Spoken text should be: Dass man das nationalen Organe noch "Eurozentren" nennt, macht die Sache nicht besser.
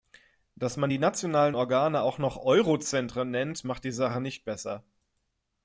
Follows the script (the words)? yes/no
no